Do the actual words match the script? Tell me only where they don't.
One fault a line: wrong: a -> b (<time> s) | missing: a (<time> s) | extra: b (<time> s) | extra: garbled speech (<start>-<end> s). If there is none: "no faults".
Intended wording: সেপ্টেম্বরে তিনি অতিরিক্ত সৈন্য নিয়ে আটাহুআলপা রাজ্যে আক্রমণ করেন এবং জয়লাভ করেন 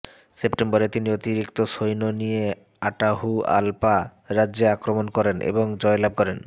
no faults